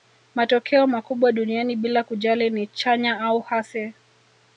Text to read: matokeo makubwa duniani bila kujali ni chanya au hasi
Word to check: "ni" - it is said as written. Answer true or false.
true